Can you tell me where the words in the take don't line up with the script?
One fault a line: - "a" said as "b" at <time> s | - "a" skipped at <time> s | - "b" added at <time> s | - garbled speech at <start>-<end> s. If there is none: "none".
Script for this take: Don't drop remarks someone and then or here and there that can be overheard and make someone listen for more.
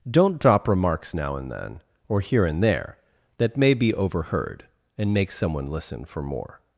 - "someone" said as "now" at 1.1 s
- "can" said as "may" at 3.6 s